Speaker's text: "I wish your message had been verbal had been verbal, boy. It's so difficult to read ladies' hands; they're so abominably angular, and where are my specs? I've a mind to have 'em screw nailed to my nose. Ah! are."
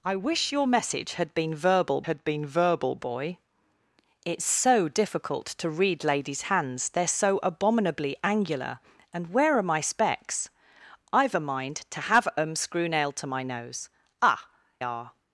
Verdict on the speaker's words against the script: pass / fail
pass